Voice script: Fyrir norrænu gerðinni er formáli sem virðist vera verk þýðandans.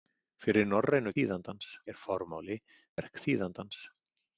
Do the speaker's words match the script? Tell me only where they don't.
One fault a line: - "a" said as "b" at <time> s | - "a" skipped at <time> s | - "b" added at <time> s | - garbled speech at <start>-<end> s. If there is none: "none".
- "gerðinni" said as "þýðandans" at 1.2 s
- "sem virðist vera" skipped at 2.6 s